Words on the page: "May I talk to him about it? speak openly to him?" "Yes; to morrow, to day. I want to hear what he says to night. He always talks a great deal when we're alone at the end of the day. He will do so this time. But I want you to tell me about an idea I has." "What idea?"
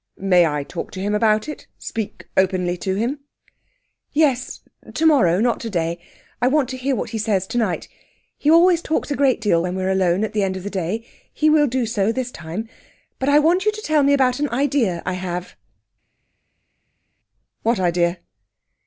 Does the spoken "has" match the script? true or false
false